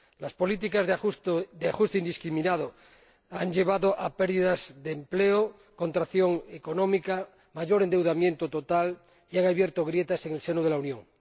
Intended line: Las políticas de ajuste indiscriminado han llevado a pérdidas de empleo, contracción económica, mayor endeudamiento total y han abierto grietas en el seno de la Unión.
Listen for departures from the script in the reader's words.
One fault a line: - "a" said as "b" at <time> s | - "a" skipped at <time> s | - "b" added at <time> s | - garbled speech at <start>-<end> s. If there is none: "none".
none